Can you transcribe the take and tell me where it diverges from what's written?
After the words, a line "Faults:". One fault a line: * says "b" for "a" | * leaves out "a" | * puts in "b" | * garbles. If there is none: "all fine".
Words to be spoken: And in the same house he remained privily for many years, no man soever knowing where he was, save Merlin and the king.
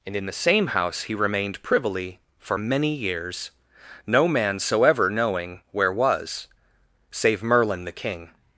And in the same house he remained privily for many years, no man soever knowing where was, save Merlin the king.
Faults:
* leaves out "he"
* leaves out "and"